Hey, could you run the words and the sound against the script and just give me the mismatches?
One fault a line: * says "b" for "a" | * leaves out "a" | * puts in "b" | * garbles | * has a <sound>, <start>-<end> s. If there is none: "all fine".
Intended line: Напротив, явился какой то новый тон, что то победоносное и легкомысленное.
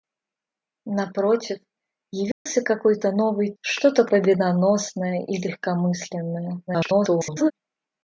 * has a dropout, 2.3-2.5 s
* leaves out "тон"
* garbles